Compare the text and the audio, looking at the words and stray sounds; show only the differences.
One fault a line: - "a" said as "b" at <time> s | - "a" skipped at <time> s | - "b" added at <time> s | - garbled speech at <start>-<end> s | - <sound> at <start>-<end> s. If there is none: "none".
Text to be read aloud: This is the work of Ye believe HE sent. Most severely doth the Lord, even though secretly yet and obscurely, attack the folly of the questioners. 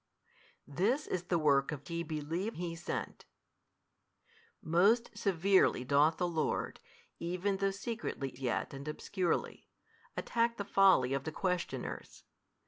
none